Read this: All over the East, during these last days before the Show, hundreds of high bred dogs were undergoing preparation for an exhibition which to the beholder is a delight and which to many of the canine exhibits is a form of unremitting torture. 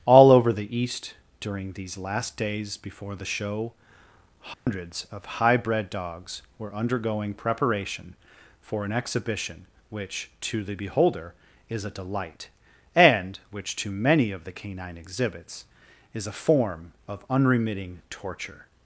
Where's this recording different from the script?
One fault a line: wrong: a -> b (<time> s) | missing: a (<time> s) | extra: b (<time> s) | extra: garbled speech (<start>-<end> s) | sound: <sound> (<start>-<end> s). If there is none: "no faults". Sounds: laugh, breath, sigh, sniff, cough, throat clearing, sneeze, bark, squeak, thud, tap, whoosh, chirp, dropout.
sound: dropout (4.5-4.7 s)